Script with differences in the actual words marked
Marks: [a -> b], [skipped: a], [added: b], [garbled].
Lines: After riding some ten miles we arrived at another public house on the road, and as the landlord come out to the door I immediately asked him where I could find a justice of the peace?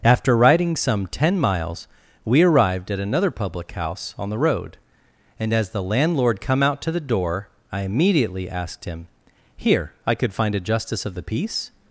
After riding some ten miles we arrived at another public house on the road, and as the landlord come out to the door I immediately asked him [where -> here] I could find a justice of the peace?